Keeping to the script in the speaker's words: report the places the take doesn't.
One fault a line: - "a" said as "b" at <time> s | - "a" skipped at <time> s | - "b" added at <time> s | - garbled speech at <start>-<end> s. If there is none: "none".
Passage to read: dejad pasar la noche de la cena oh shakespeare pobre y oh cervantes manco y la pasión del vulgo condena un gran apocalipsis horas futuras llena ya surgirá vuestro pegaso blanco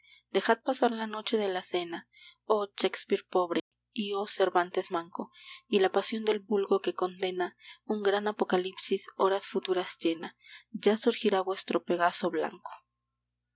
- "que" added at 6.8 s